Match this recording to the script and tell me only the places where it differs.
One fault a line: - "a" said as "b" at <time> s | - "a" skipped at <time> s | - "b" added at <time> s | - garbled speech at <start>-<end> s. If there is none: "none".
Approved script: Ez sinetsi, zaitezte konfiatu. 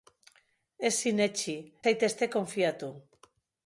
none